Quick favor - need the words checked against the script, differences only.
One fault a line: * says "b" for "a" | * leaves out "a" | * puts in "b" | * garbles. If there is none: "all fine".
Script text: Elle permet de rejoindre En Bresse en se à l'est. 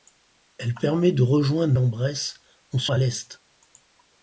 all fine